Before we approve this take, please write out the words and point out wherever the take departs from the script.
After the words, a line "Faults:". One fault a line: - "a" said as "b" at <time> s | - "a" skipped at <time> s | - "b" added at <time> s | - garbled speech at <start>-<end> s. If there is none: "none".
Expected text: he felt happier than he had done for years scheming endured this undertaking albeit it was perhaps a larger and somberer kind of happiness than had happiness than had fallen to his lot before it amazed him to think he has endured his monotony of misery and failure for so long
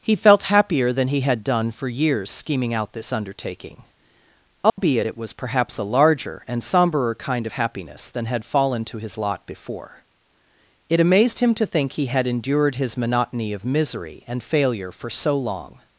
he felt happier than he had done for years scheming out this undertaking albeit it was perhaps a larger and somberer kind of happiness than had fallen to his lot before it amazed him to think he had endured his monotony of misery and failure for so long
Faults:
- "endured" said as "out" at 2.7 s
- "happiness than had" skipped at 8.4 s
- "has" said as "had" at 12.1 s